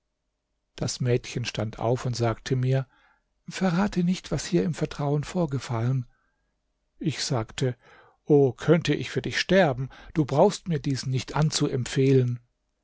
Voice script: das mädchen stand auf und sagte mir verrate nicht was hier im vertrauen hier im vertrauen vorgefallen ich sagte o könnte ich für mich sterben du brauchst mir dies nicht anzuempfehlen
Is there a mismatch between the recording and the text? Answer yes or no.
yes